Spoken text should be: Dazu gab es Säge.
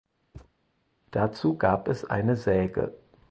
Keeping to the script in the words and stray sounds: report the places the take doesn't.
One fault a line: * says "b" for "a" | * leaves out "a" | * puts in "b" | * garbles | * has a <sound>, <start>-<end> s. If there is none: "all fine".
* has a thud, 0.3-0.5 s
* puts in "eine"